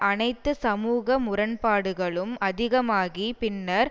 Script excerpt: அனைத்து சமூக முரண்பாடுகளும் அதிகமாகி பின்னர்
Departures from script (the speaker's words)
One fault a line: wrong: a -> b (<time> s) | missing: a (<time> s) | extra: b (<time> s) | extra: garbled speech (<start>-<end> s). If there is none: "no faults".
no faults